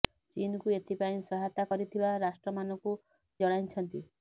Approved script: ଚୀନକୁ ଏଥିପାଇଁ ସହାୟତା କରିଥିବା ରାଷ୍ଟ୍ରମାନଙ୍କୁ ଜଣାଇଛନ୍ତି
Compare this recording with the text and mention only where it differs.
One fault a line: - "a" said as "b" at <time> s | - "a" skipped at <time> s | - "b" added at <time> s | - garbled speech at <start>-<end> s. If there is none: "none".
none